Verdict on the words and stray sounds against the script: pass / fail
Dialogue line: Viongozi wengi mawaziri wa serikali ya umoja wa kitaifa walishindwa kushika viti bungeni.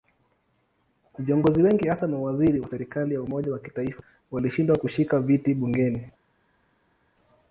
fail